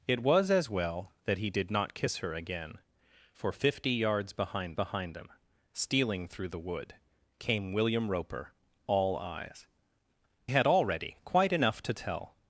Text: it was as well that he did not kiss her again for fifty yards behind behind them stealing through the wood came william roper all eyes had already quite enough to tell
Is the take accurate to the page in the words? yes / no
yes